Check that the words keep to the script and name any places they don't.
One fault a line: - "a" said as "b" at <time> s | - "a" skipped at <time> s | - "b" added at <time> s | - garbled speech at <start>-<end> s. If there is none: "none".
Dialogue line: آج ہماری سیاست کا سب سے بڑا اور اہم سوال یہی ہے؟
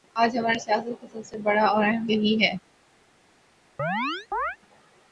- "سوال" skipped at 2.1 s